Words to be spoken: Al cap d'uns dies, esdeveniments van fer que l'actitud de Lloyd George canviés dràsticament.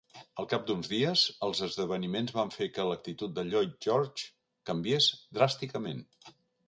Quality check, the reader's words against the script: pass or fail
fail